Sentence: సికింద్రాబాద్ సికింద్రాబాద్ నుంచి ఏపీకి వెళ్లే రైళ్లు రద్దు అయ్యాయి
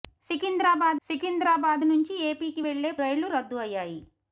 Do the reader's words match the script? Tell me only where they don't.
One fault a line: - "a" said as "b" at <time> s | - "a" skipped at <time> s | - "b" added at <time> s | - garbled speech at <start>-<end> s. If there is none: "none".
none